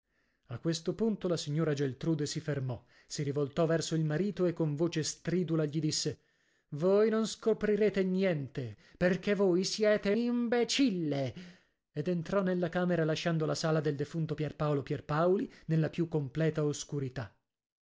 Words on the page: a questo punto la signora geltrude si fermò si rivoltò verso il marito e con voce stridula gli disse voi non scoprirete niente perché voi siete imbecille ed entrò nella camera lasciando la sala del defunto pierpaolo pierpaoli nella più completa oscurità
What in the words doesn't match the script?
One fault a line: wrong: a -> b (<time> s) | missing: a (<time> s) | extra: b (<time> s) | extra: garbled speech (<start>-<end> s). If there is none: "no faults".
no faults